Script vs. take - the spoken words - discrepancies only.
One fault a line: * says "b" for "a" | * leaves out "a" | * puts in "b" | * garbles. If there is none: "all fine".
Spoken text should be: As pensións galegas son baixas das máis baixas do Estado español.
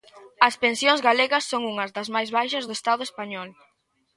* says "unhas" for "baixas"